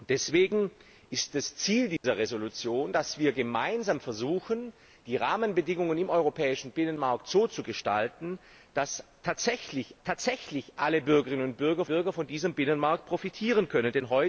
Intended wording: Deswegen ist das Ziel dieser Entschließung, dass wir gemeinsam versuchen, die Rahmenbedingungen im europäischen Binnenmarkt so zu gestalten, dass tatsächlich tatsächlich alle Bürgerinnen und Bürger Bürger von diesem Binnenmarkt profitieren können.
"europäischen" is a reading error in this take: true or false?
false